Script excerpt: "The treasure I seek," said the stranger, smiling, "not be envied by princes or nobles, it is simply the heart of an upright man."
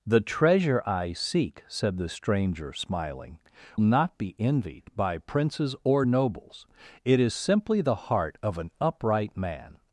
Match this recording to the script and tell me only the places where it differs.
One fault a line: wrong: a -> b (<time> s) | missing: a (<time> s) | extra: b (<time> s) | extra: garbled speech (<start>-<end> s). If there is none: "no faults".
no faults